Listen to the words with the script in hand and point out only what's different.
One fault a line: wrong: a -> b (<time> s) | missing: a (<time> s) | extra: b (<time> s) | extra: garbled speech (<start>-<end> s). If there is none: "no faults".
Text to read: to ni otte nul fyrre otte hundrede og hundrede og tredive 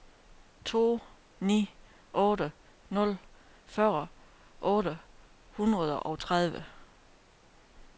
missing: hundrede og (6.2 s)